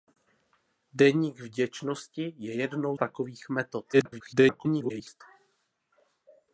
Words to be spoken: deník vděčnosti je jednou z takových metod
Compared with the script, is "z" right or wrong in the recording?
wrong